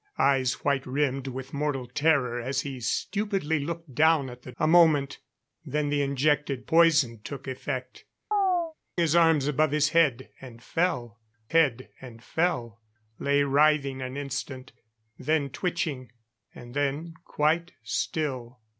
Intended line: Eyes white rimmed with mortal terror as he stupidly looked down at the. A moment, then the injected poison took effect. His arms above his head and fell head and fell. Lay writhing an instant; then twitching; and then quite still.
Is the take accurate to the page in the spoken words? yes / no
yes